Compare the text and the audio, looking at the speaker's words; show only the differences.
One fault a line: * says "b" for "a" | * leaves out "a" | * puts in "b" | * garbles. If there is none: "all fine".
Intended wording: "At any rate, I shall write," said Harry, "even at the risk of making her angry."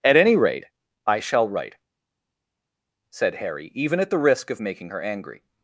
all fine